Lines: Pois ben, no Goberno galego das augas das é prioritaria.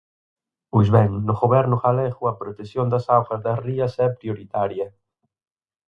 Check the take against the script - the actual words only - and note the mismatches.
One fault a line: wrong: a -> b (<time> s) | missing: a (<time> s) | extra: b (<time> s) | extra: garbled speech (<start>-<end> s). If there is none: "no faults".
extra: a protección (2.3 s)
extra: rías (3.7 s)